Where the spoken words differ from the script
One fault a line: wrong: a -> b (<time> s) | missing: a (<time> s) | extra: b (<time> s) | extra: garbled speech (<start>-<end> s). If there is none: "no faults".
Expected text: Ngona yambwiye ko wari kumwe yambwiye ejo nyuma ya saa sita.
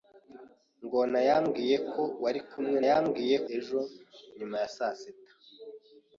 no faults